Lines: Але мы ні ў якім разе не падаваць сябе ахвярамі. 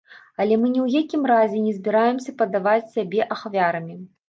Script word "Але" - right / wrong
right